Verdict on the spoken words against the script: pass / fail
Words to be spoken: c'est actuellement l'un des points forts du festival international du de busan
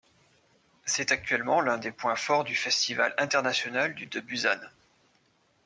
pass